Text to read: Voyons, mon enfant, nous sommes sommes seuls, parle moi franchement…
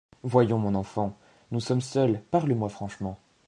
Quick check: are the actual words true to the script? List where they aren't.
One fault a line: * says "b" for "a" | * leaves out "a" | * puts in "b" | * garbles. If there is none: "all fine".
* leaves out "sommes"